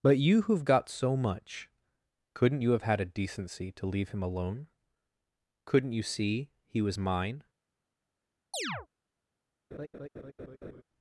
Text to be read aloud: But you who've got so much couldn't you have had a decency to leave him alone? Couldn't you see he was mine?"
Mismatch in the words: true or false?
false